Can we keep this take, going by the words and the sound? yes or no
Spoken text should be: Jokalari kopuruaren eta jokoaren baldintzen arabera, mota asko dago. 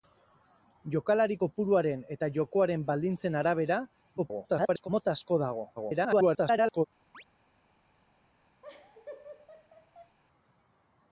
no